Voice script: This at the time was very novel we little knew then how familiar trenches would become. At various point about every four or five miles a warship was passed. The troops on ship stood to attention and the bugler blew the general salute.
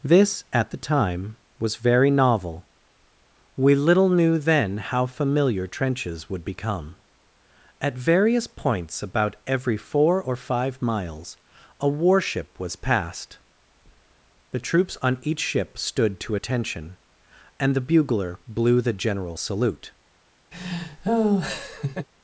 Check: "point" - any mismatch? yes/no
yes